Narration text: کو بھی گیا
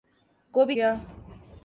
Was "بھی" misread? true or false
false